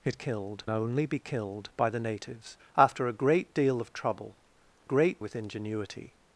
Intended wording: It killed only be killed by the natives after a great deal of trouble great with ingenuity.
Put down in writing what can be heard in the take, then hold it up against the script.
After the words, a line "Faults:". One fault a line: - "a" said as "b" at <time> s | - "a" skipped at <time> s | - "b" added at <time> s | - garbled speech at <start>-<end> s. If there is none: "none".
It killed only be killed by the natives after a great deal of trouble great with ingenuity.
Faults:
none